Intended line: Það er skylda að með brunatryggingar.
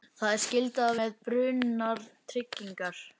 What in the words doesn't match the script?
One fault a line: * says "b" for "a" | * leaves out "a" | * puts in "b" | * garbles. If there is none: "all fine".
all fine